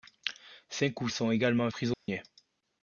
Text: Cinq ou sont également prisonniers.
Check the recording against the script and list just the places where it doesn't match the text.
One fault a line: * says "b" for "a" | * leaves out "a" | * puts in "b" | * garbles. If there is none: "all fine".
all fine